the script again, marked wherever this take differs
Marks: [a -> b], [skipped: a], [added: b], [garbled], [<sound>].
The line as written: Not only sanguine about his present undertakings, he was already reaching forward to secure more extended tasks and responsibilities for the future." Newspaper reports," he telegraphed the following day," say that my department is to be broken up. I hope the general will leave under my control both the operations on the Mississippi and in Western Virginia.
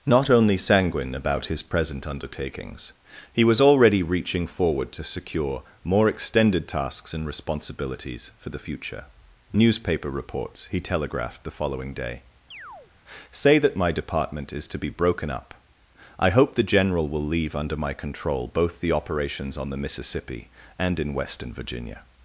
Not only sanguine about his present undertakings, he was already reaching forward to secure more extended tasks and responsibilities for the future." Newspaper reports," he telegraphed the following day," [chirp] say that my department is to be broken up. I hope the general will leave under my control both the operations on the Mississippi and in Western Virginia.